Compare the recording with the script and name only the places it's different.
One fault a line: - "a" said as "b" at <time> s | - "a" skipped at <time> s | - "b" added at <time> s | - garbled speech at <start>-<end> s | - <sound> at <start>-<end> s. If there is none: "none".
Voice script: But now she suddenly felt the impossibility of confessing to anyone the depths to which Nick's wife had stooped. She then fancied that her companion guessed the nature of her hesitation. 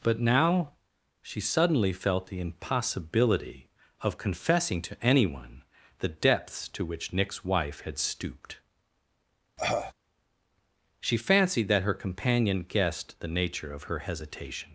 - cough at 9.6-9.9 s
- "then" skipped at 11.2 s